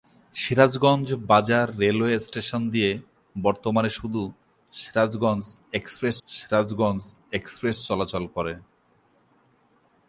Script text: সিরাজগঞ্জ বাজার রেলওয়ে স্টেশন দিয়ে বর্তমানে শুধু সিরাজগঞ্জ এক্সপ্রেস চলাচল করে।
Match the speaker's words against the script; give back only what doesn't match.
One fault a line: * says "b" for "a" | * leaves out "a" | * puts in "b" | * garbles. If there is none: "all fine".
* puts in "সিরাজগঞ্জ এক্সপ্রেস"